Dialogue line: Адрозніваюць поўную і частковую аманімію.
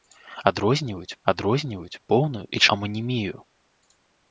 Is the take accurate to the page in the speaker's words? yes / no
no